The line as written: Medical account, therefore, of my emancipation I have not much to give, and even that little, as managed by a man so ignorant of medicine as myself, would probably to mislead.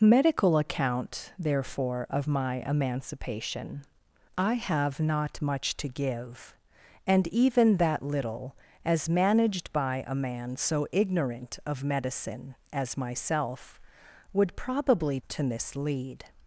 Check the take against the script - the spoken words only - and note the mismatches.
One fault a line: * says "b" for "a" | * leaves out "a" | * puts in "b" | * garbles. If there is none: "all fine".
all fine